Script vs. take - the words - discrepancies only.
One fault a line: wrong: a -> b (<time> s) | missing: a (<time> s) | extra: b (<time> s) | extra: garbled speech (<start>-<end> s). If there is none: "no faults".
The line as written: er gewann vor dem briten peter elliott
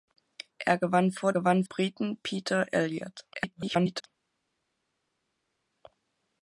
wrong: dem -> gewann (1.3 s)
extra: garbled speech (3.3-4.1 s)